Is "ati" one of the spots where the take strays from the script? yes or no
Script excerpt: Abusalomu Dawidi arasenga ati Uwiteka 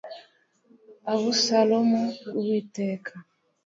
yes